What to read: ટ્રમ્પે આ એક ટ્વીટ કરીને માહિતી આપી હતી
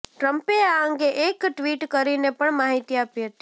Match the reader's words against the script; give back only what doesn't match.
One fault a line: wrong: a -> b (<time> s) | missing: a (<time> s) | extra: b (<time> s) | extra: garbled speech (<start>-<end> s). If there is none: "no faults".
extra: અંગે (0.8 s)
extra: પણ (2.3 s)